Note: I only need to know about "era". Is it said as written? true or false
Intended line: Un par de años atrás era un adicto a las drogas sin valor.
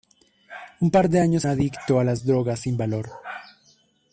false